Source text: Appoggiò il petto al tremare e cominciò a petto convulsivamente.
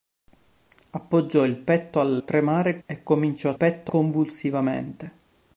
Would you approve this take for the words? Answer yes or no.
yes